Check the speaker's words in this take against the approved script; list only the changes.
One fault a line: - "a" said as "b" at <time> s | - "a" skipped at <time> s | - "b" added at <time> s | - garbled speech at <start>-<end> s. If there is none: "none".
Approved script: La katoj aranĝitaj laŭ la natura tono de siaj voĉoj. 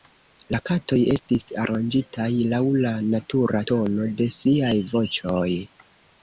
- "estis" added at 1.1 s